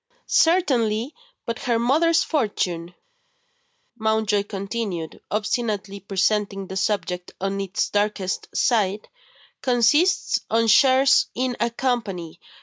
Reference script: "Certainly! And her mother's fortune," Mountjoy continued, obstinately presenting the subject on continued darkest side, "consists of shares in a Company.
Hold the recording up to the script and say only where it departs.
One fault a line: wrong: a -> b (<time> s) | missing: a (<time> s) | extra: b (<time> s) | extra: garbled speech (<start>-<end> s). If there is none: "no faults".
wrong: And -> But (1.4 s)
wrong: continued -> its (7.6 s)